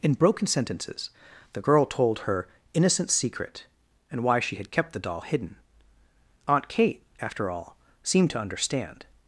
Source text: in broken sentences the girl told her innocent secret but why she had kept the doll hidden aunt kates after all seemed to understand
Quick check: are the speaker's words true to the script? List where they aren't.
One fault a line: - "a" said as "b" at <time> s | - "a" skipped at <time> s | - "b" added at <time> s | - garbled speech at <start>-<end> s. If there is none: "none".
- "but" said as "and" at 4.1 s
- "kates" said as "kate" at 6.7 s